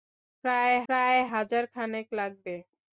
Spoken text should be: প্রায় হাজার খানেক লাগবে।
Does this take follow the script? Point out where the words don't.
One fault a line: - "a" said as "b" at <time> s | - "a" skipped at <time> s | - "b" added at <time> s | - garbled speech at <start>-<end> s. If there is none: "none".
- "প্রায়" added at 0.9 s